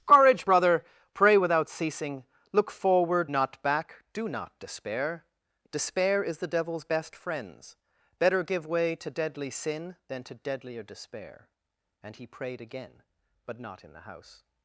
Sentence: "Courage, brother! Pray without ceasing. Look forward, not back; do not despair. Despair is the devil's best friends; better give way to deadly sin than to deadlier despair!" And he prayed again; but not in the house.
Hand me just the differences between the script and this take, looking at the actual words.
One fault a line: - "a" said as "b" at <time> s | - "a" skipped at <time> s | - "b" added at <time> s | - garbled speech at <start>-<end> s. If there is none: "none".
none